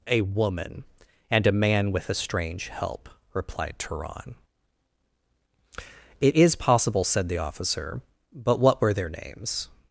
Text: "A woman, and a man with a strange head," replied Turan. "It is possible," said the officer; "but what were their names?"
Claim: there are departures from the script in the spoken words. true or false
true